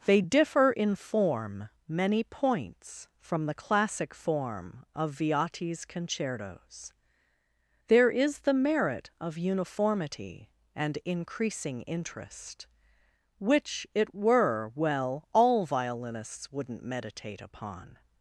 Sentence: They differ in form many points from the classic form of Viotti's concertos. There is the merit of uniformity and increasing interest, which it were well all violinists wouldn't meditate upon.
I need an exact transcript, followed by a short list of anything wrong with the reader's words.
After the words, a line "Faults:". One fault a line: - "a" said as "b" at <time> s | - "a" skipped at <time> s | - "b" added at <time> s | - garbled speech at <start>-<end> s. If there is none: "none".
They differ in form many points from the classic form of Viotti's concertos. There is the merit of uniformity and increasing interest, which it were well all violinists wouldn't meditate upon.
Faults:
none